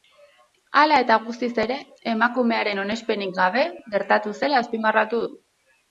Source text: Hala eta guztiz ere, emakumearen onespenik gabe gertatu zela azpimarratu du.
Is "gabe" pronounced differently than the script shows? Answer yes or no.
no